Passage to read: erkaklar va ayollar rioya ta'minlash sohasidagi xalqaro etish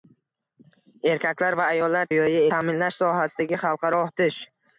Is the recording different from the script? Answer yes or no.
no